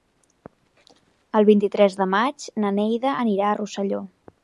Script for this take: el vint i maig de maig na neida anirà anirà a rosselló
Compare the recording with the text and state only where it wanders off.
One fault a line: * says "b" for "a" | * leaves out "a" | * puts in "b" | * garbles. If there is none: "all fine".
* says "tres" for "maig"
* leaves out "anirà"